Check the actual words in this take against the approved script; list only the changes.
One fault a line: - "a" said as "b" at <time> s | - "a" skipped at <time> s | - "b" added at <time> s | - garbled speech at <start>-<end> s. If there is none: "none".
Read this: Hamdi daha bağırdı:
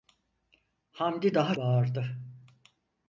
none